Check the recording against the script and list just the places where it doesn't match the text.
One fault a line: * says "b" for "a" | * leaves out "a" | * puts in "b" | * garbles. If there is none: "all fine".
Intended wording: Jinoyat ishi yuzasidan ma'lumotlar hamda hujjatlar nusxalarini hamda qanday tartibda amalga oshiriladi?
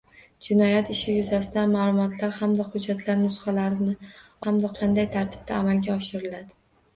all fine